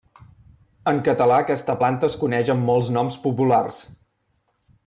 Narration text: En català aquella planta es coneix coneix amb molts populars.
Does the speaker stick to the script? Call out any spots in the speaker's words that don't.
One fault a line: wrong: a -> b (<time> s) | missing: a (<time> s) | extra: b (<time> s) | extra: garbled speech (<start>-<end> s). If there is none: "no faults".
wrong: aquella -> aquesta (1.4 s)
missing: coneix (2.5 s)
extra: noms (3.0 s)